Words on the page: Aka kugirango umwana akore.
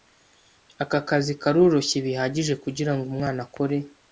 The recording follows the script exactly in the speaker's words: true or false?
false